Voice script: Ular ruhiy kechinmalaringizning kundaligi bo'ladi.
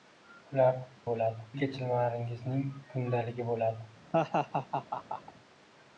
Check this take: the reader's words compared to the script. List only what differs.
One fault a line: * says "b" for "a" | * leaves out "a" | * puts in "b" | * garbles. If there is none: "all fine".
* says "bo'ladi" for "ruhiy"